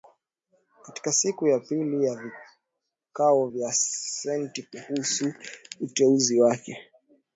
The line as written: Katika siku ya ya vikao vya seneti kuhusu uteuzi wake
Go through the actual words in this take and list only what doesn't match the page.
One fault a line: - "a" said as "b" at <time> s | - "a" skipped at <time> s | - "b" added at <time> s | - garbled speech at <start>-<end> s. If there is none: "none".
- "pili" added at 1.6 s